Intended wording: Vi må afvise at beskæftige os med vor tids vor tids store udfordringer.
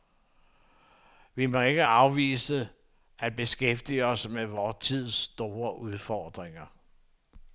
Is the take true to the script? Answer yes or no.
no